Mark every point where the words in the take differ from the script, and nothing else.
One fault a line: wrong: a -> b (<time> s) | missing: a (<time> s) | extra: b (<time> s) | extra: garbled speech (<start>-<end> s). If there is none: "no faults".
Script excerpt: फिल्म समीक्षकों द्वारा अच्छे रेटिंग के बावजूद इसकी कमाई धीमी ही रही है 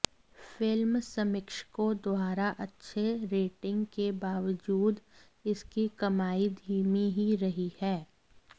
no faults